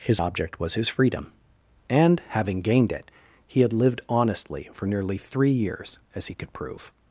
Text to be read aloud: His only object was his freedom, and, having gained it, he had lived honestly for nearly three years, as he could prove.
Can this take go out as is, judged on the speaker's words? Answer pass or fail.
fail